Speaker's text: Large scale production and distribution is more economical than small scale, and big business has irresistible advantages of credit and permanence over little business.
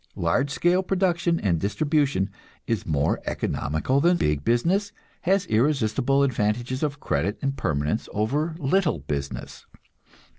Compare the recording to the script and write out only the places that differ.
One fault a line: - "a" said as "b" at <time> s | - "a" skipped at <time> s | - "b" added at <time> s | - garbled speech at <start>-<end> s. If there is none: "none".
- "small scale and" skipped at 4.2 s